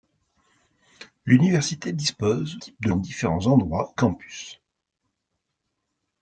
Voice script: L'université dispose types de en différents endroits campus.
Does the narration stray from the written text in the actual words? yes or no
no